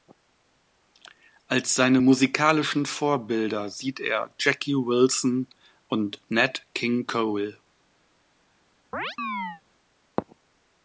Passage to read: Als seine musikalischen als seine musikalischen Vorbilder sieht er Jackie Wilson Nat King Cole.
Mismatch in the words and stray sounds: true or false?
true